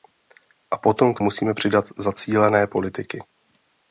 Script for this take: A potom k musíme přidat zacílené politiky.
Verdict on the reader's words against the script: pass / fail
pass